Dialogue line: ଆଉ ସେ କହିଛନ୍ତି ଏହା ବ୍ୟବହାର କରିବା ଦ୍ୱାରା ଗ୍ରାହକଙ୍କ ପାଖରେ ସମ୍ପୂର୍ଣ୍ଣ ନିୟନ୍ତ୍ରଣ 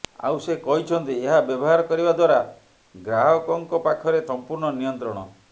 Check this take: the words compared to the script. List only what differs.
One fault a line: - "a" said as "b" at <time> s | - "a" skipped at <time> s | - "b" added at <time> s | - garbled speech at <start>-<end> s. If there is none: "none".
none